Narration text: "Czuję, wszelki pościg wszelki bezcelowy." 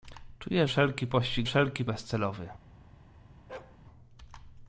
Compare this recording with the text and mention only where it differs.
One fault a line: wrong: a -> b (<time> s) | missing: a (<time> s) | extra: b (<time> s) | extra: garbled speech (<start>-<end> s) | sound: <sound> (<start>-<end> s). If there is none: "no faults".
sound: bark (3.5-3.8 s)